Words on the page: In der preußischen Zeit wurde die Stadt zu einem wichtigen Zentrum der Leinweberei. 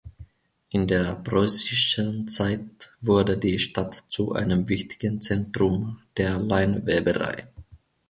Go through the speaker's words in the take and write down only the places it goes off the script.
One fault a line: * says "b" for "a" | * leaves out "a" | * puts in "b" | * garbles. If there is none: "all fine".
all fine